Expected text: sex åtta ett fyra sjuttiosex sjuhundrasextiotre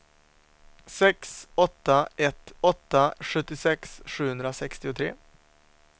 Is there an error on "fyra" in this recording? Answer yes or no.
yes